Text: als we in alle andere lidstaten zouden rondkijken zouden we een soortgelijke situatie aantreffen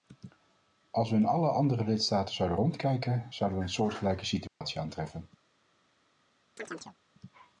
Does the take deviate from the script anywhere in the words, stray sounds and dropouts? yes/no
yes